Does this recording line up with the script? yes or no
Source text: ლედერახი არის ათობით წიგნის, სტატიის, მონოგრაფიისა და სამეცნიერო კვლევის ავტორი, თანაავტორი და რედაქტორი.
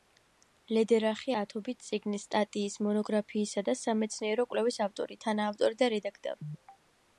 no